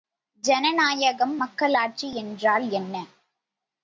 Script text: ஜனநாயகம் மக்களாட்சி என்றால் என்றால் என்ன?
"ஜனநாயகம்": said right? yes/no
yes